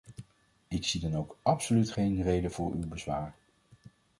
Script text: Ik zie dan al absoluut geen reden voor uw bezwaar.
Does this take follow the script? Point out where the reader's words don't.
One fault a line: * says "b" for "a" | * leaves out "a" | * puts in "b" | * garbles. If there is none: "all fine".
* says "ook" for "al"